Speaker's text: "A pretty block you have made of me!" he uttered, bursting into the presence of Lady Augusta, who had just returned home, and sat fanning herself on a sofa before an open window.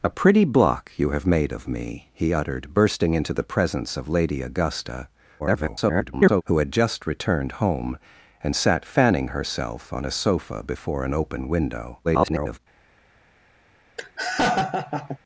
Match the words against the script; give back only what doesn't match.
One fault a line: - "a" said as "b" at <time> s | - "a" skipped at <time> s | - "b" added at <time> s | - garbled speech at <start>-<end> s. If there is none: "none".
- garbled speech at 5.4-6.4 s
- garbled speech at 12.0-12.6 s